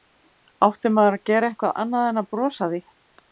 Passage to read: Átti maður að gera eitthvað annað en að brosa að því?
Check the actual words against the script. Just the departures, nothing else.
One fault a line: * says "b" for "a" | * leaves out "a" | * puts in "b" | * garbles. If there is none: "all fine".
all fine